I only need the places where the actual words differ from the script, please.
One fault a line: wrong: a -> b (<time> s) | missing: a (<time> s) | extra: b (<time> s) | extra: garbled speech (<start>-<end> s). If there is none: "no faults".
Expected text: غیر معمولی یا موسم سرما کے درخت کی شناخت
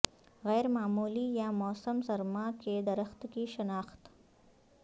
no faults